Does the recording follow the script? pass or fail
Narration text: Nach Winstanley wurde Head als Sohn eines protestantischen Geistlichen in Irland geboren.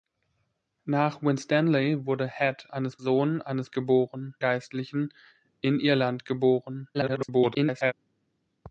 fail